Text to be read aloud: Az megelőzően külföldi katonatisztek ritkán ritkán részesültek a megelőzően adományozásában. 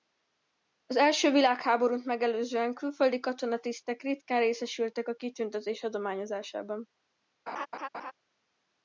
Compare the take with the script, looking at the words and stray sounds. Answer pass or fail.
fail